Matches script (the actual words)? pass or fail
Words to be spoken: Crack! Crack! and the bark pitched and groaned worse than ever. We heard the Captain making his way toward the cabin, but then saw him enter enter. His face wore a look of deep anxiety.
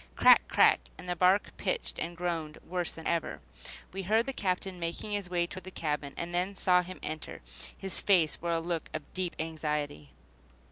fail